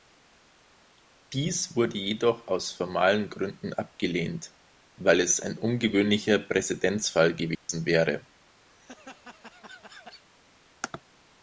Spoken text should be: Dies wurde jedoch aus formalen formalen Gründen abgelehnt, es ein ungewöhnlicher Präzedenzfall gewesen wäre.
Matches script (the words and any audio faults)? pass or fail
fail